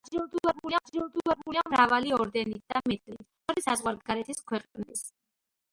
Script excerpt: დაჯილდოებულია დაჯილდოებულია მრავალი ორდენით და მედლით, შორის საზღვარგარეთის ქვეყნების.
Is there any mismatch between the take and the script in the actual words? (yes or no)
no